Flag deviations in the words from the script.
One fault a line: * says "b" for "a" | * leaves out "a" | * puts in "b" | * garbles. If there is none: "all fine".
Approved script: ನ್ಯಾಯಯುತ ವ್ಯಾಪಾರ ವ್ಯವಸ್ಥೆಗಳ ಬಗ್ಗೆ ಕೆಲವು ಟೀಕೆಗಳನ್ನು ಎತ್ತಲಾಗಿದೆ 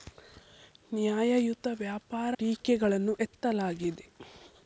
* leaves out "ವ್ಯವಸ್ಥೆಗಳ ಬಗ್ಗೆ ಕೆಲವು"